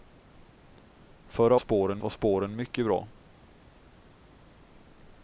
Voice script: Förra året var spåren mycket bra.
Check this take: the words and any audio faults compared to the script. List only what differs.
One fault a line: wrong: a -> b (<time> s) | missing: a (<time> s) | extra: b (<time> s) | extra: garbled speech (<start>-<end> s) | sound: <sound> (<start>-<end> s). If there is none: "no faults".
wrong: året -> spåren (1.6 s)